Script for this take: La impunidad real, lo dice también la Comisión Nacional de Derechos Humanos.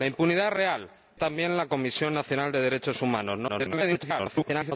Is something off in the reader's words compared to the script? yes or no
yes